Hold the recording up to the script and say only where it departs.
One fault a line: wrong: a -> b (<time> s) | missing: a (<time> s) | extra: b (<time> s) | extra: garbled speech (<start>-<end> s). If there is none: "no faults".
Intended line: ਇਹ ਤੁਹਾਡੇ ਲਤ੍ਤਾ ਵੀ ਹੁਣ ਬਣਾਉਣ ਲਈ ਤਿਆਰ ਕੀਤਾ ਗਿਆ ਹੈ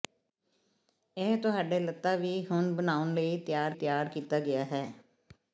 extra: ਤਿਆਰ (3.7 s)